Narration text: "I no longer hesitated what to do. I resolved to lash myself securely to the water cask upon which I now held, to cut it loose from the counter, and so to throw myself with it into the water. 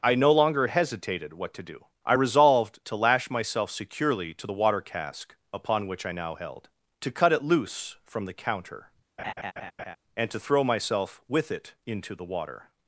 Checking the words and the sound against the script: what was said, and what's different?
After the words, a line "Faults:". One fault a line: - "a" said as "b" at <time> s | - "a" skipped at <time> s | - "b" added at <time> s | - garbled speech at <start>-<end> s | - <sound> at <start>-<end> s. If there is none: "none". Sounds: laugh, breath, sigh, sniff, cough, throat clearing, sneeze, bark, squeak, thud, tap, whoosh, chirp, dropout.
"I no longer hesitated what to do. I resolved to lash myself securely to the water cask upon which I now held, to cut it loose from the counter, and to throw myself with it into the water.
Faults:
- laugh at 9.2-10.0 s
- "so" skipped at 10.3 s